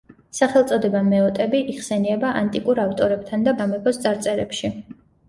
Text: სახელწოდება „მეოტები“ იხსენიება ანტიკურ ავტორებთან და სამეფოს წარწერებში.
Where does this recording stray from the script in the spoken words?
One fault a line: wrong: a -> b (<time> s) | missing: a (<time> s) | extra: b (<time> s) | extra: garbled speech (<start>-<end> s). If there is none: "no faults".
no faults